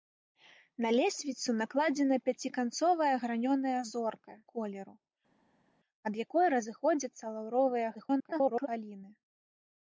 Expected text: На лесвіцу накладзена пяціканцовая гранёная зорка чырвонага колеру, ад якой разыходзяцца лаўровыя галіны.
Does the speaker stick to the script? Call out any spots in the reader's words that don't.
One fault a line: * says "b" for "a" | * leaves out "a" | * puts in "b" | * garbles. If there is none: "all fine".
* leaves out "чырвонага"
* garbles